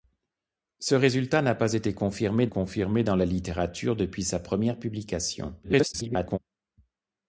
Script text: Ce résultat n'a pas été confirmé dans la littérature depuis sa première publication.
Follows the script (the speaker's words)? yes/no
no